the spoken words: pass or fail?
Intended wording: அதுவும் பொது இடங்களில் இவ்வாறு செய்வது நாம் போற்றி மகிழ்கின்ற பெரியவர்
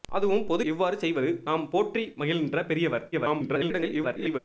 fail